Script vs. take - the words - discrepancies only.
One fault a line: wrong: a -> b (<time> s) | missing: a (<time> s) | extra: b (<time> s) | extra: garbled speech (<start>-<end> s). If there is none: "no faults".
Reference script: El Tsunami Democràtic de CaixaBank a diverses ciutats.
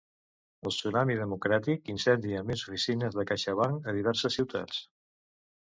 extra: incendia més oficines (1.9 s)